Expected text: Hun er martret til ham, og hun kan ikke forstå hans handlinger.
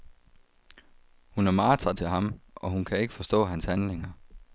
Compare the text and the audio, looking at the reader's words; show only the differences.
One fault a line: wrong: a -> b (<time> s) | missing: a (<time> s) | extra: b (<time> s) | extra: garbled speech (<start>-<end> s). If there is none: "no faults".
no faults